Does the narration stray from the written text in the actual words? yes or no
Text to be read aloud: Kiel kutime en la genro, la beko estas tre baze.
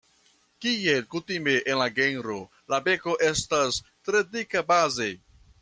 yes